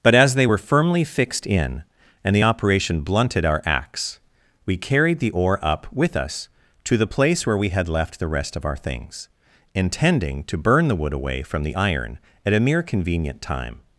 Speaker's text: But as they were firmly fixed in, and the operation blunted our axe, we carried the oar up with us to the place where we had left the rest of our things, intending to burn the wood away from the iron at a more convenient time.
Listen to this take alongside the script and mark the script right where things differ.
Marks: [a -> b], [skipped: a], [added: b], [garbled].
But as they were firmly fixed in, and the operation blunted our axe, we carried the oar up with us to the place where we had left the rest of our things, intending to burn the wood away from the iron at a [more -> mere] convenient time.